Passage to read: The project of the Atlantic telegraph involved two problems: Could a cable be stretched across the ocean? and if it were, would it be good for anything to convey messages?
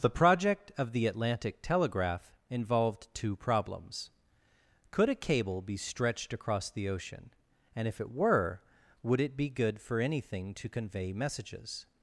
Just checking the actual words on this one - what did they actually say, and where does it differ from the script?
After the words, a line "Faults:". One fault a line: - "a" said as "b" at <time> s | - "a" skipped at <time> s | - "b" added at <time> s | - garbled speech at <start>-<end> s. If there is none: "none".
The project of the Atlantic telegraph involved two problems: Could a cable be stretched across the ocean? and if it were, would it be good for anything to convey messages?
Faults:
none